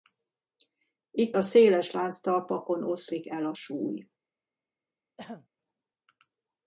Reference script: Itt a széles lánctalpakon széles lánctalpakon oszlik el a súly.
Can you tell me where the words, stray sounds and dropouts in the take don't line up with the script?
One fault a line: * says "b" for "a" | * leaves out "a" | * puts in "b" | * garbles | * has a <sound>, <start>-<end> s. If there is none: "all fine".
* leaves out "széles lánctalpakon"
* has a throat clearing, 5.2-5.5 s